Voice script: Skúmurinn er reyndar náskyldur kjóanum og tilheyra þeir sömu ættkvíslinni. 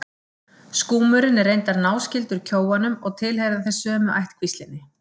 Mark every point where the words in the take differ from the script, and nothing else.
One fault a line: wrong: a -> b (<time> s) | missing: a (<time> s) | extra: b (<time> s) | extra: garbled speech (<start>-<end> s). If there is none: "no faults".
no faults